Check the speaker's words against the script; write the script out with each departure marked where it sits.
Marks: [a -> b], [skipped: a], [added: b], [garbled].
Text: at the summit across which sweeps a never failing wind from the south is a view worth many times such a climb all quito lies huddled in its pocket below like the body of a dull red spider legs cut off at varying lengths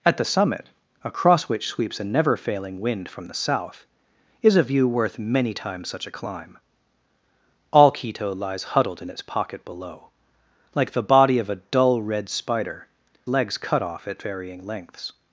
at the summit across which sweeps a never failing wind from the south is a view worth many times such a climb all quito lies huddled in its pocket below like the body of a dull red spider legs cut off at varying lengths